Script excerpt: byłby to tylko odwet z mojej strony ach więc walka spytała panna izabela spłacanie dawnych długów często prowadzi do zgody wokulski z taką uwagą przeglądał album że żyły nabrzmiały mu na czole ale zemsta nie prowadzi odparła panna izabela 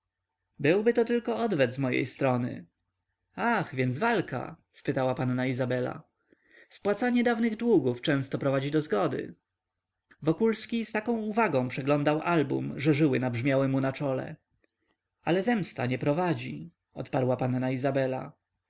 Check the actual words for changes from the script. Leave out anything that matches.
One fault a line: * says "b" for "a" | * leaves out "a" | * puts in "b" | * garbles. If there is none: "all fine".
all fine